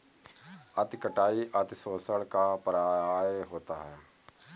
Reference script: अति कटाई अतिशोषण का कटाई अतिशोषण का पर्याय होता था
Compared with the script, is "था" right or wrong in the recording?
wrong